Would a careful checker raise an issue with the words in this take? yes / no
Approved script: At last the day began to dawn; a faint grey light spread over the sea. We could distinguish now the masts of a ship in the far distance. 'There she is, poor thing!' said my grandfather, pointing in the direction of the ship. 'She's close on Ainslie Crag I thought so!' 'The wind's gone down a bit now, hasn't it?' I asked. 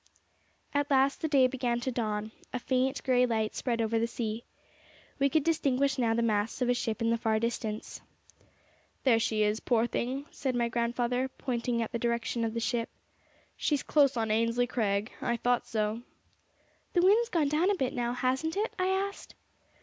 no